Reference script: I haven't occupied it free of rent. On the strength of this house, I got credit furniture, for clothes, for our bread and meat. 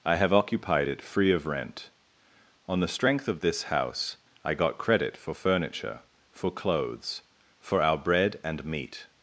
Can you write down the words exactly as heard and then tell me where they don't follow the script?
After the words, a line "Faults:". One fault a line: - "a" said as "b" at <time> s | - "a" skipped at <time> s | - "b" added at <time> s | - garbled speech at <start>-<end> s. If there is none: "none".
I have occupied it free of rent. On the strength of this house, I got credit for furniture, for clothes, for our bread and meat.
Faults:
- "haven't" said as "have" at 0.1 s
- "for" added at 5.2 s